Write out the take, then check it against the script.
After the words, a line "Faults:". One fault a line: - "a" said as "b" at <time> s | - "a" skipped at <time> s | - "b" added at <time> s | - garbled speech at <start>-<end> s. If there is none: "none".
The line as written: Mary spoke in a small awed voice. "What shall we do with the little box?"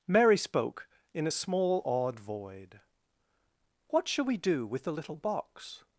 Mary spoke in a small awed void. "What shall we do with the little box?"
Faults:
- "voice" said as "void" at 2.2 s